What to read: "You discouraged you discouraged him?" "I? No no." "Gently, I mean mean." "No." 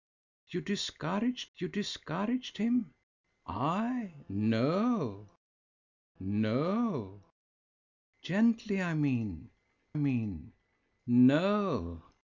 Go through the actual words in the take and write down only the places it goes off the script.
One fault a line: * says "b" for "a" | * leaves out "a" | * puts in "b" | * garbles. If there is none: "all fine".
all fine